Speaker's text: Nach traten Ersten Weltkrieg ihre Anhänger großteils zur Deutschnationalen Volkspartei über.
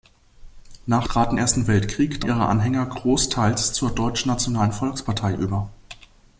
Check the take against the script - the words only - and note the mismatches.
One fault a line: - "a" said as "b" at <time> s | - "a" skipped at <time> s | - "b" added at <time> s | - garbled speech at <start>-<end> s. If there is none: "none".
none